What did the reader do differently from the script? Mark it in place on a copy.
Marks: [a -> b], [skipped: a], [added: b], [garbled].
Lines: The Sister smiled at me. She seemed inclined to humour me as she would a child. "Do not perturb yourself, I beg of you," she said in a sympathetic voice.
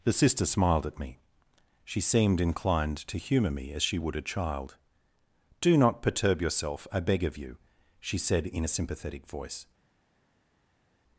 The Sister smiled at me. She seemed inclined to humour me as she would a child. "Do not perturb yourself, I beg of you," she said in a sympathetic voice.